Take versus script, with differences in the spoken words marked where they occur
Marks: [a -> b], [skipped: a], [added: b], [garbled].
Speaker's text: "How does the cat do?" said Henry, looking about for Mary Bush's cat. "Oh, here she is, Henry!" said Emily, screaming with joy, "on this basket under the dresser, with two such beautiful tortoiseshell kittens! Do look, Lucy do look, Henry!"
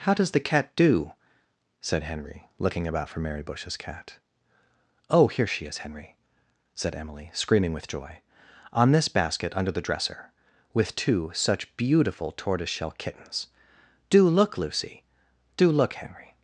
"How does the cat do?" said Henry, looking about for Mary Bush's cat. "Oh, here she is, Henry!" said Emily, screaming with joy, "on this basket under the dresser, with two such beautiful tortoiseshell kittens! Do look, Lucy do look, Henry!"